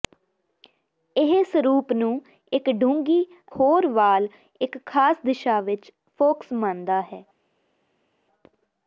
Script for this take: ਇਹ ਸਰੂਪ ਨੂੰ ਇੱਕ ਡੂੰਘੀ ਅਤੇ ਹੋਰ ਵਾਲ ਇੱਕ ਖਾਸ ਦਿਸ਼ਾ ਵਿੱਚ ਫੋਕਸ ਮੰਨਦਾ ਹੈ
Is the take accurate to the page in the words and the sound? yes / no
no